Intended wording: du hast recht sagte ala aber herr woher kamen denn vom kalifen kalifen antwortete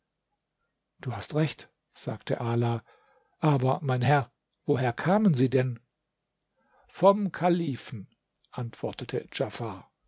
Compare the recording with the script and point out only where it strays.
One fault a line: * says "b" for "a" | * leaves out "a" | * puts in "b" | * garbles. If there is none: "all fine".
* puts in "mein"
* puts in "sie"
* leaves out "kalifen"